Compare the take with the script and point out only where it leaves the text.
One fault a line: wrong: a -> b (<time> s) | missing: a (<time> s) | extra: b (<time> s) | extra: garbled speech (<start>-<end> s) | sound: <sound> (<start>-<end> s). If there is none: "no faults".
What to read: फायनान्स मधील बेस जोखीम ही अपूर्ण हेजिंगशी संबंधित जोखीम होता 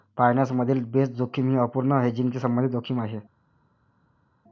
wrong: होता -> आहे (3.0 s)